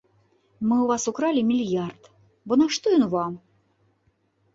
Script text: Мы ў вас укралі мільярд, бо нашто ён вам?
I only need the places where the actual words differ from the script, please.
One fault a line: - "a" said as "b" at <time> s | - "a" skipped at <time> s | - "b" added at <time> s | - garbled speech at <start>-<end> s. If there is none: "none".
none